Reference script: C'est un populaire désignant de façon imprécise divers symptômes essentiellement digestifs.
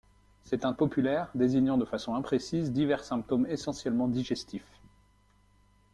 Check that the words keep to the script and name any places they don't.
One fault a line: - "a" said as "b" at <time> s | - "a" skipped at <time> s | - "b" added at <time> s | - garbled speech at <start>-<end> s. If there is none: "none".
none